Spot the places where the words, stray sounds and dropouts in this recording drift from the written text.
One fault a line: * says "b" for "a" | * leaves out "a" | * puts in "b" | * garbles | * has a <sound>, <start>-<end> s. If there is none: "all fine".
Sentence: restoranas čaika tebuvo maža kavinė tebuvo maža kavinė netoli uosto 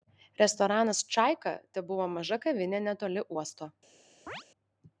* leaves out "tebuvo maža kavinė"
* has a chirp, 4.3-4.4 s